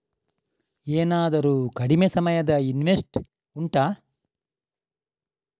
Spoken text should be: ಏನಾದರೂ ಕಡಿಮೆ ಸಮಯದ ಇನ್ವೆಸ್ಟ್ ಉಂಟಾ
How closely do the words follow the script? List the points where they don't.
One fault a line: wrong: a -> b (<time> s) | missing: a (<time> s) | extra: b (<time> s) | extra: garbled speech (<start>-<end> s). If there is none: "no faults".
no faults